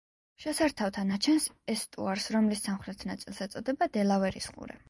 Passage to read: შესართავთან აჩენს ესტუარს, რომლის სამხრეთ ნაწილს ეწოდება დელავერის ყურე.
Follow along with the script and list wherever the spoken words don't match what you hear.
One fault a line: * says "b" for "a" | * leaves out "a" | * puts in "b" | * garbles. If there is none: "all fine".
all fine